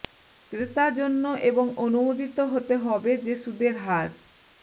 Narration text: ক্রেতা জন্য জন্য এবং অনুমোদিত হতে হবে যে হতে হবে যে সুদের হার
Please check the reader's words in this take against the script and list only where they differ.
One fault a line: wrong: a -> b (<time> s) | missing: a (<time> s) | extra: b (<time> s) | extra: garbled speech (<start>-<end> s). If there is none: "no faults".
missing: জন্য (1.2 s)
missing: হতে হবে যে (3.3 s)